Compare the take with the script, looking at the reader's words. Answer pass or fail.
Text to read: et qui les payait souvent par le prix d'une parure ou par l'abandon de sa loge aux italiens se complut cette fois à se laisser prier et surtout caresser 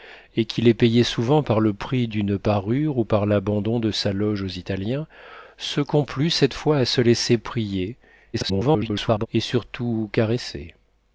fail